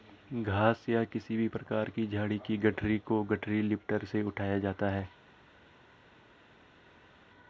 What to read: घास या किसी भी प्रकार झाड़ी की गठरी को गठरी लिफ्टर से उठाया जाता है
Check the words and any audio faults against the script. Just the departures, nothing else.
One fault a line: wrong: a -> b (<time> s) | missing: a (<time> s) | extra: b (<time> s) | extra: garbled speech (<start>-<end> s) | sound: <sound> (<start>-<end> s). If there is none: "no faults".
extra: की (1.9 s)